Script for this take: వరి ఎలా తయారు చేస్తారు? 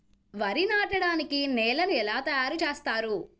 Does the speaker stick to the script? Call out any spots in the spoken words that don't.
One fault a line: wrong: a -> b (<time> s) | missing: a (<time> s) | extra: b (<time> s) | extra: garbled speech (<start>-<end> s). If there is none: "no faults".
extra: నాటడానికి నేలను (0.7 s)